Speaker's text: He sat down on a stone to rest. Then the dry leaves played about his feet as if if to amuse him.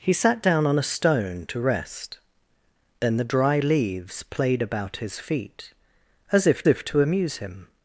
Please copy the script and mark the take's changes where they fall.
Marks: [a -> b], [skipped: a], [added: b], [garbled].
He sat down on a stone to rest. Then the dry leaves played about his feet as if if to amuse him.